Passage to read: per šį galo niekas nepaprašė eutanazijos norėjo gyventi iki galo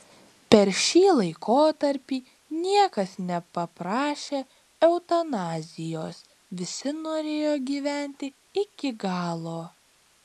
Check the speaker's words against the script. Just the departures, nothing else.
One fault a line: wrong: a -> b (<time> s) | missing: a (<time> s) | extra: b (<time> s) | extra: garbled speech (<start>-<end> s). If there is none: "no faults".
wrong: galo -> laikotarpį (1.2 s)
extra: visi (6.6 s)